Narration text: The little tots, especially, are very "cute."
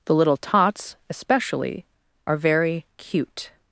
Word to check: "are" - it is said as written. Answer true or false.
true